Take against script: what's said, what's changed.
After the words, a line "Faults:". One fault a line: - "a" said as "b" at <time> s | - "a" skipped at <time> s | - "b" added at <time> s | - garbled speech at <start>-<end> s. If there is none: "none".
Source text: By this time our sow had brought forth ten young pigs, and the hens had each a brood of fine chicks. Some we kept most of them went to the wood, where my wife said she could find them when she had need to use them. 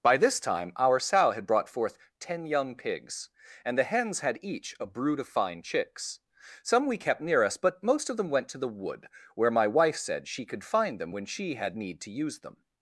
By this time our sow had brought forth ten young pigs, and the hens had each a brood of fine chicks. Some we kept near us, but most of them went to the wood, where my wife said she could find them when she had need to use them.
Faults:
- "near us but" added at 7.2 s